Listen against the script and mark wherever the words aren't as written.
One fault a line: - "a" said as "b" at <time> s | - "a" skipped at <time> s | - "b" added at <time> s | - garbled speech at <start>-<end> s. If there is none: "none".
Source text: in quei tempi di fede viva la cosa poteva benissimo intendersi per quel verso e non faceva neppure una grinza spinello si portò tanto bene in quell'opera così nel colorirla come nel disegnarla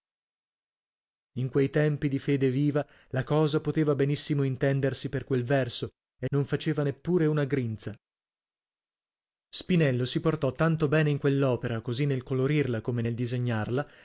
none